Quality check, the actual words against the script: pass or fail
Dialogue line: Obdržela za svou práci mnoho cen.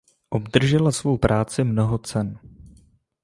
fail